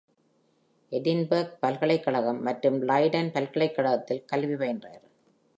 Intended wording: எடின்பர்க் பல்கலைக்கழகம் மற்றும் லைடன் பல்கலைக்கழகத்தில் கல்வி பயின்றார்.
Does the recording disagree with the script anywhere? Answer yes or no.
no